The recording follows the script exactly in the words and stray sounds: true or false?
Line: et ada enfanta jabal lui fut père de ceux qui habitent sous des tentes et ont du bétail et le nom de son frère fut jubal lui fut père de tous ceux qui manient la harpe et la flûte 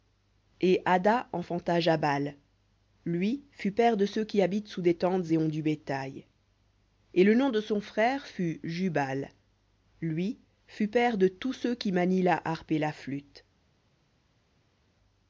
true